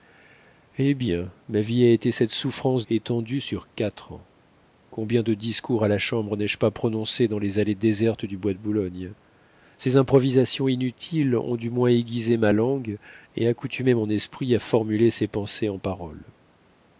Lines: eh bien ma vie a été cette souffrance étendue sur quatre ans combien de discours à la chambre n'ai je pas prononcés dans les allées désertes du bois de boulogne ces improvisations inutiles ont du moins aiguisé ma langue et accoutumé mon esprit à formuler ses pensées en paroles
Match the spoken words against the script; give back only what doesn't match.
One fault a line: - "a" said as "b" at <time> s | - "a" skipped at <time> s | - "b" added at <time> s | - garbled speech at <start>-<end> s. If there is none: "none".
none